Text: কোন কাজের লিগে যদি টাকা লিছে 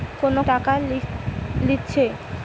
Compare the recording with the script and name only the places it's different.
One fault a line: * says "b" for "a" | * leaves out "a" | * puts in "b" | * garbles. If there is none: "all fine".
* leaves out "কাজের লিগে যদি"